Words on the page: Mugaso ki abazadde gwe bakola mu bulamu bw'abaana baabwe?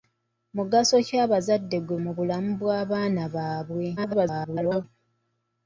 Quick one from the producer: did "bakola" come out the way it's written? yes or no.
no